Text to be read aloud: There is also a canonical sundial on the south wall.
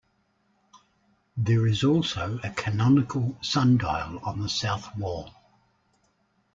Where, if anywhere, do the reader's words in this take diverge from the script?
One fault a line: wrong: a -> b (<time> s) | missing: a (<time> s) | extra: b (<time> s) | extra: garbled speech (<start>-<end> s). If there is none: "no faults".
no faults